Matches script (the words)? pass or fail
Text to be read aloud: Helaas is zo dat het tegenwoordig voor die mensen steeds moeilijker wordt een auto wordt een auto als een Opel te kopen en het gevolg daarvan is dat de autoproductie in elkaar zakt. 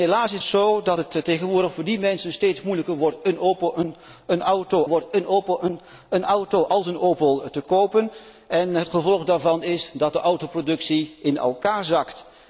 pass